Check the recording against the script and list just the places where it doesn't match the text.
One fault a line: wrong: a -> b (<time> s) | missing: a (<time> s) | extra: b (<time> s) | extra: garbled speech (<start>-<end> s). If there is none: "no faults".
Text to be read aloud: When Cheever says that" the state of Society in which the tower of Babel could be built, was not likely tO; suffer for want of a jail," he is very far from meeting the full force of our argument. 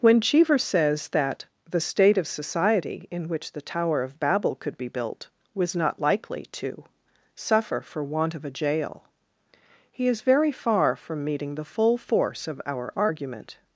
no faults